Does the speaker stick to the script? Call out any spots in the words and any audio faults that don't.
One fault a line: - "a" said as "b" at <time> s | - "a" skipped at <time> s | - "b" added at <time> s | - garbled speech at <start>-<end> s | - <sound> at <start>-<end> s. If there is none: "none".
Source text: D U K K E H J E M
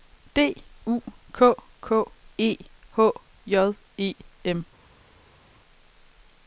none